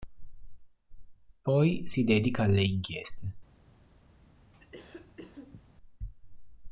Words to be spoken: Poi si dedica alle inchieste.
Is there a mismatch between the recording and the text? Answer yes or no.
no